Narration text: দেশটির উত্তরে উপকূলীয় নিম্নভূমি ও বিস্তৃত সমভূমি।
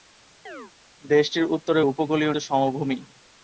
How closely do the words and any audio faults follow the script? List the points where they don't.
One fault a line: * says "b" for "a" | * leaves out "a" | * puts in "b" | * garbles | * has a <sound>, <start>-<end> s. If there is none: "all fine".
* has a chirp, 0.5-0.7 s
* leaves out "নিম্নভূমি ও বিস্তৃত"